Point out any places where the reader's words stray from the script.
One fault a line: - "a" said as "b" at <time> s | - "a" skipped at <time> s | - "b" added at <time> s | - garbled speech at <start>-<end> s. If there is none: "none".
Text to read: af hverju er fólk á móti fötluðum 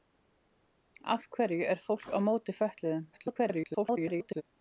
- garbled speech at 3.1-4.4 s